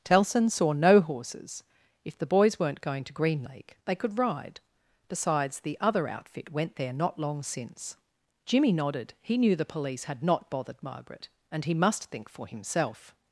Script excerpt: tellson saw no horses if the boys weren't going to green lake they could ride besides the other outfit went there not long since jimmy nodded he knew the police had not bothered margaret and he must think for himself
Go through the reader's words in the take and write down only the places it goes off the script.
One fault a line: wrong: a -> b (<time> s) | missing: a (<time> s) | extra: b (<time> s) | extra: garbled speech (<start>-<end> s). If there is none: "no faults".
no faults